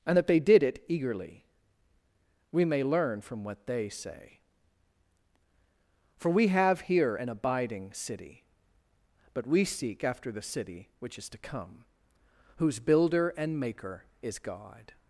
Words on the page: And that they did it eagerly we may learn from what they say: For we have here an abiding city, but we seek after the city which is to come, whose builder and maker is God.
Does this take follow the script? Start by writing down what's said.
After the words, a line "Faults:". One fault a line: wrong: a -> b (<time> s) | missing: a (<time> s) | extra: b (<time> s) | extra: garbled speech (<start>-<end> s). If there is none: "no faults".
And that they did it eagerly we may learn from what they say: For we have here an abiding city, but we seek after the city which is to come, whose builder and maker is God.
Faults:
no faults